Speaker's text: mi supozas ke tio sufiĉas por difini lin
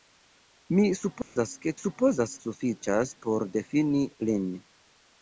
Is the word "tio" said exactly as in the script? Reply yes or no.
no